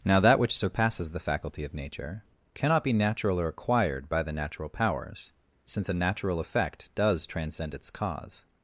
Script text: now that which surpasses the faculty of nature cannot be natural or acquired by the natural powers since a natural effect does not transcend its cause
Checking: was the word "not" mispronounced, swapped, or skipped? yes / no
yes